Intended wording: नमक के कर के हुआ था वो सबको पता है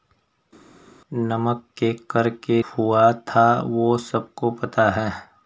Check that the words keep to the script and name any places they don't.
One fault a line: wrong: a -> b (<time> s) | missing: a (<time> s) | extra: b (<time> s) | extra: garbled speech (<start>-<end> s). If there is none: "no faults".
no faults